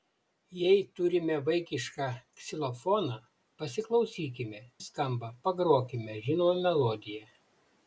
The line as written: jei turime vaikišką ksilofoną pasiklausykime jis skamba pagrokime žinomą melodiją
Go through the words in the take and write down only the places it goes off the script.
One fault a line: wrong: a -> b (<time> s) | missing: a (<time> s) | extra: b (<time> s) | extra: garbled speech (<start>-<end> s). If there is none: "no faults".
no faults